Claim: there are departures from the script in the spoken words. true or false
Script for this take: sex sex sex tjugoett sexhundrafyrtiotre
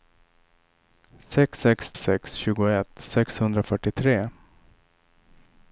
false